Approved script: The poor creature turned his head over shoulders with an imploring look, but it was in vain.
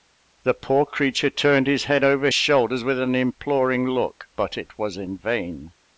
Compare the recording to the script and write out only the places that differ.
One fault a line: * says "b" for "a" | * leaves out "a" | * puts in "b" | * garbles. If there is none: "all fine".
all fine